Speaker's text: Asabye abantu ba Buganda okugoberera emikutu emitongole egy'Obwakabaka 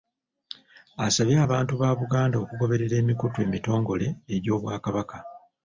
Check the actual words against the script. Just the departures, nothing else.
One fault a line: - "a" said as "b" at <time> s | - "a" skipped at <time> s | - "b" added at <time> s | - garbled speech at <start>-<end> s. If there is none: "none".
none